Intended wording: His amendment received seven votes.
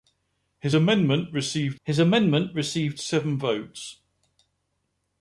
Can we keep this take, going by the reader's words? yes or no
no